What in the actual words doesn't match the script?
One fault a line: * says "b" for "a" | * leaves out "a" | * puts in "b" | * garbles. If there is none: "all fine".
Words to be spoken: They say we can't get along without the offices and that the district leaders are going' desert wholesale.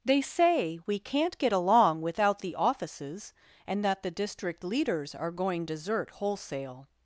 all fine